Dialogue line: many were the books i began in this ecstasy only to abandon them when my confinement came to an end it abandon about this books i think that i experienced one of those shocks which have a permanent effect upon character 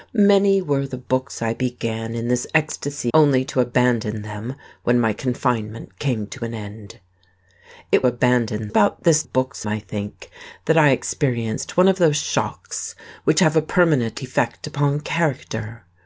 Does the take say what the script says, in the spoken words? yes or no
yes